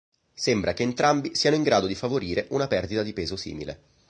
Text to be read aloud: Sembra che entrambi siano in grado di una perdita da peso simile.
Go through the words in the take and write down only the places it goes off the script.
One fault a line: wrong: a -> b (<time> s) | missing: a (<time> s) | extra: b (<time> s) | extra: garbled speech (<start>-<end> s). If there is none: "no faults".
extra: favorire (1.9 s)
wrong: da -> di (3.0 s)